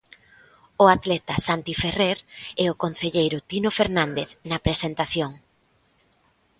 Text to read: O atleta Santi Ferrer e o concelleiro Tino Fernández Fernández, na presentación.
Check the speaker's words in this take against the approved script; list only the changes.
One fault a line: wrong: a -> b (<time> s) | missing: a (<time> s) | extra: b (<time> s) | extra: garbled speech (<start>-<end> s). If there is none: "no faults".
missing: Fernández (4.3 s)